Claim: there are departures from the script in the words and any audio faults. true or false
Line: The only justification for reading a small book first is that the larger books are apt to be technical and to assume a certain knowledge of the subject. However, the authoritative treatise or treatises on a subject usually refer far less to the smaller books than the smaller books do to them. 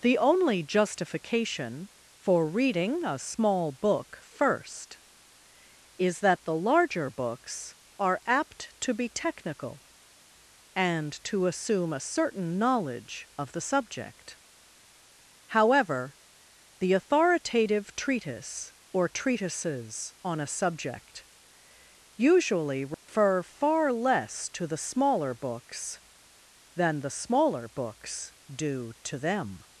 true